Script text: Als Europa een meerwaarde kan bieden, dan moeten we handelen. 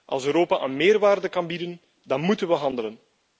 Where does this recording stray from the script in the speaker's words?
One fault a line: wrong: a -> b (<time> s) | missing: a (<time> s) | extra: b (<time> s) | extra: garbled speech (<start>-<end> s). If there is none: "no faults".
no faults